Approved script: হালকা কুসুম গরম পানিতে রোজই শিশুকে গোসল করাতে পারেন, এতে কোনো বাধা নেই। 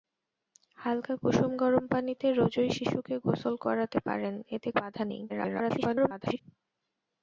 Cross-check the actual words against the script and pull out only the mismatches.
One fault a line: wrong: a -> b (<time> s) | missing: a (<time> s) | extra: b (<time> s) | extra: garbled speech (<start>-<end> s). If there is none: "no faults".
missing: কোনো (4.7 s)
extra: garbled speech (5.3-6.4 s)